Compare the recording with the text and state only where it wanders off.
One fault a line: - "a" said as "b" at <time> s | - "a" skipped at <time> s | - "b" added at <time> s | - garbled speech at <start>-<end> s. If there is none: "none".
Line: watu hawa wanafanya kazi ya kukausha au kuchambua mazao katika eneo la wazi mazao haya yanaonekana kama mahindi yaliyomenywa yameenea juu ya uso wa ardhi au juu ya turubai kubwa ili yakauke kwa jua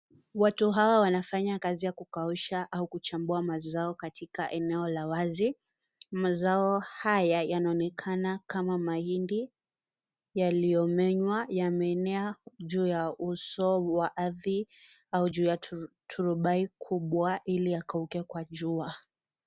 none